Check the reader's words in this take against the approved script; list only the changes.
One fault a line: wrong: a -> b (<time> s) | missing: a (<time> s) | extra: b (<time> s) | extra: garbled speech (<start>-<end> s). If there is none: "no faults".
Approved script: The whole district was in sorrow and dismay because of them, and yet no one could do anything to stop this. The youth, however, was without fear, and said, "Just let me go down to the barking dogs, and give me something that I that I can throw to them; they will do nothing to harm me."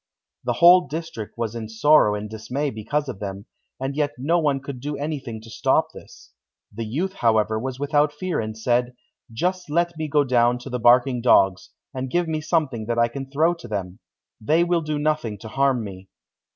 missing: that I (13.1 s)